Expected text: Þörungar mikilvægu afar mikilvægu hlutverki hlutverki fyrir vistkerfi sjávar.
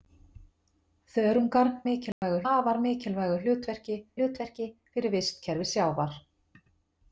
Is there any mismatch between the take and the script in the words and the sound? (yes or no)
yes